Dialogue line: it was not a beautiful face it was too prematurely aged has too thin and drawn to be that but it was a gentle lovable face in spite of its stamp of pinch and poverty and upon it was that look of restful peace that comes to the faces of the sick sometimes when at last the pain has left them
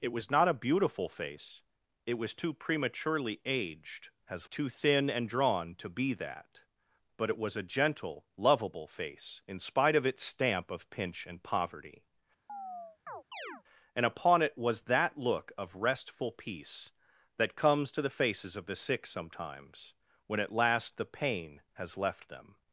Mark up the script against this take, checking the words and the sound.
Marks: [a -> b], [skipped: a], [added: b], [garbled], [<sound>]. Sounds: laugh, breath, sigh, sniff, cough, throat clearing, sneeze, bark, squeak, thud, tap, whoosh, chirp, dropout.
it was not a beautiful face it was too prematurely aged has too thin and drawn to be that but it was a gentle lovable face in spite of its stamp of pinch and poverty [chirp] and upon it was that look of restful peace that comes to the faces of the sick sometimes when at last the pain has left them